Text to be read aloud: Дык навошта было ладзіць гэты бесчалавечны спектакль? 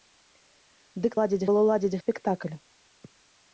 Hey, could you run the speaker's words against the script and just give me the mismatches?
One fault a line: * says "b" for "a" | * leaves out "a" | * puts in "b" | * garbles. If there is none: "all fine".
* says "ладзіць" for "навошта"
* leaves out "гэты бесчалавечны"